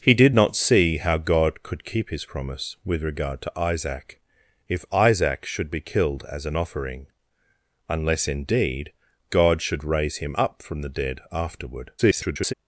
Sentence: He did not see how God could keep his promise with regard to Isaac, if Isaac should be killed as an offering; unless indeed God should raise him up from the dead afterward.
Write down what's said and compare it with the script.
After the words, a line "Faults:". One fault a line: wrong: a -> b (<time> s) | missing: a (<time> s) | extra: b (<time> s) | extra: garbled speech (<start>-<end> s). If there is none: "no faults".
He did not see how God could keep his promise with regard to Isaac, if Isaac should be killed as an offering; unless indeed God should raise him up from the dead afterward. [garbled]
Faults:
extra: garbled speech (12.0-12.5 s)